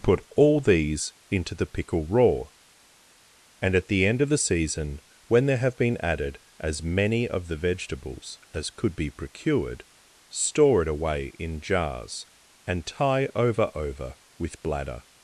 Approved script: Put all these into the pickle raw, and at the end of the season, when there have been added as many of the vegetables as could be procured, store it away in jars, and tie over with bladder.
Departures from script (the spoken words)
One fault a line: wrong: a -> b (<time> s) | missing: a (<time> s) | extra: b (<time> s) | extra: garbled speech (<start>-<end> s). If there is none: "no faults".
extra: over (13.8 s)